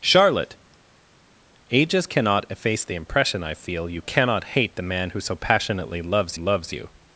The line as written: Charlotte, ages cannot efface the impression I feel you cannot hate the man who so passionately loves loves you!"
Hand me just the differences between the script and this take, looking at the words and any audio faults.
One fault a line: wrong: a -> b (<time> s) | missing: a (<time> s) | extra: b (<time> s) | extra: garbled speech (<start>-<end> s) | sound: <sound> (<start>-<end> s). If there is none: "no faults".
no faults